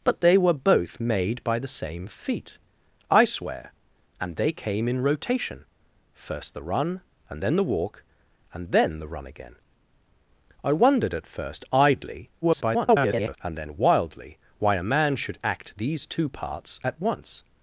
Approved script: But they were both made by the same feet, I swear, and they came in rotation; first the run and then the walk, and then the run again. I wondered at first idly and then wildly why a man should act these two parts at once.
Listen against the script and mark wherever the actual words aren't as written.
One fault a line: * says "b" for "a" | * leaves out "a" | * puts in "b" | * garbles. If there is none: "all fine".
* garbles